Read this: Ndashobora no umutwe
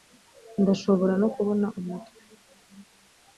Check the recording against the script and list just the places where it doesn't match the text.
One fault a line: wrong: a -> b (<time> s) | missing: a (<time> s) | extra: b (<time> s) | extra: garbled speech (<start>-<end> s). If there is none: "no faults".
extra: kubona (1.3 s)